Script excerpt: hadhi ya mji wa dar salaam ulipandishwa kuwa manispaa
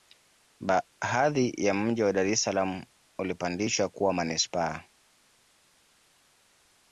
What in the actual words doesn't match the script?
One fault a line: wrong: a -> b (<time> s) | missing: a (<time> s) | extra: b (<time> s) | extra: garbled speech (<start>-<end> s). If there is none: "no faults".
extra: es (2.3 s)